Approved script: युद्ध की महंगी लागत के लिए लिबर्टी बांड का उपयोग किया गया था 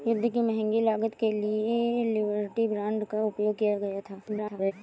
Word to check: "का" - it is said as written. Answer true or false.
true